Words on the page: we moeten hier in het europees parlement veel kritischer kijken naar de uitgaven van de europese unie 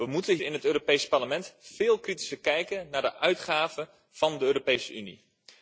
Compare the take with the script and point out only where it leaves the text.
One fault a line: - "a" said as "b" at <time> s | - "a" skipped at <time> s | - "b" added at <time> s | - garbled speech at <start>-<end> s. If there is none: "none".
- "hier" skipped at 0.4 s